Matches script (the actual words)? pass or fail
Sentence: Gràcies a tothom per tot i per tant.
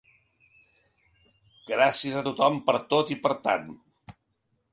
pass